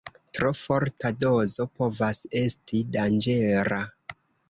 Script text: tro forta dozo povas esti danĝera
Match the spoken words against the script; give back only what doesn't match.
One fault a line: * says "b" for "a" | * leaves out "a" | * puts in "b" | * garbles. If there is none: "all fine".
all fine